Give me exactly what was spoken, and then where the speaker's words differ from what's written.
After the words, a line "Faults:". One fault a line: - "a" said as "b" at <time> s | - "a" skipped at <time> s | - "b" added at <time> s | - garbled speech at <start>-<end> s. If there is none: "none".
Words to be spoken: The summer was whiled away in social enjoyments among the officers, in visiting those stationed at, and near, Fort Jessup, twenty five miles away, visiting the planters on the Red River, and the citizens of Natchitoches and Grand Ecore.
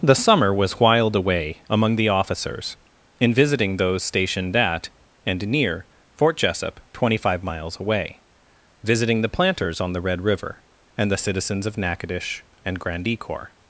The summer was whiled away among the officers, in visiting those stationed at, and near, Fort Jessup, twenty five miles away, visiting the planters on the Red River, and the citizens of Natchitoches and Grand Ecore.
Faults:
- "in social enjoyments" skipped at 1.6 s